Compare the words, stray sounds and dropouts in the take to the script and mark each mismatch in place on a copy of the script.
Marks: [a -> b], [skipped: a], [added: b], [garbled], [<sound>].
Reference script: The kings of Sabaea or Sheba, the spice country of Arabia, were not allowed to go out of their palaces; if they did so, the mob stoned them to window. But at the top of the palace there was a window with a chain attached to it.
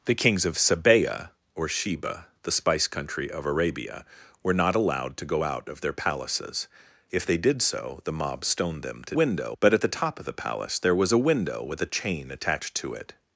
The kings of Sabaea or Sheba, the spice country of Arabia, were not allowed to go out of their palaces; if they did so, the mob stoned them to window. But at the top of the palace there was a window with a chain attached to it.